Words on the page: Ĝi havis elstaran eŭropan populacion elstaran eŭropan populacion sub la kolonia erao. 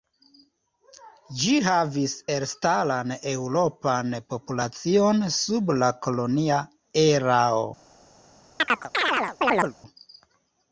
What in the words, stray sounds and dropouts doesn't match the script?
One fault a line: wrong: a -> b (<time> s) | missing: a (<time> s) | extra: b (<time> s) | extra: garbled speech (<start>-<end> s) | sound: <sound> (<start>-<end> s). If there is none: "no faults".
missing: elstaran eŭropan populacion (5.3 s)
sound: chirp (8.6-9.7 s)